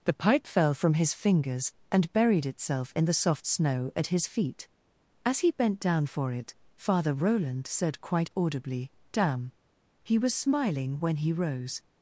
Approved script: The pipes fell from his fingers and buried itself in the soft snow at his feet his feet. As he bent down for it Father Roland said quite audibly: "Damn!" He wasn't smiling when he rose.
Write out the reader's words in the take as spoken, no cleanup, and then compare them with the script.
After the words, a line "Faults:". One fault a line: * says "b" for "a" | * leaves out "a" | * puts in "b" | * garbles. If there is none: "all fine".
The pipe fell from his fingers and buried itself in the soft snow at his feet. As he bent down for it Father Roland said quite audibly: "Damn!" He was smiling when he rose.
Faults:
* says "pipe" for "pipes"
* leaves out "his feet"
* says "was" for "wasn't"